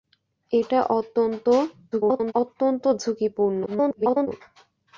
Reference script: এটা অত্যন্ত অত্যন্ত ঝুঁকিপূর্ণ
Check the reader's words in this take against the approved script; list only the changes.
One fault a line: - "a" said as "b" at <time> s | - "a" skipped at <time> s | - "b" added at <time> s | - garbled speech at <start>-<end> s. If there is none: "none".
- garbled speech at 1.9-2.3 s
- garbled speech at 3.7-4.3 s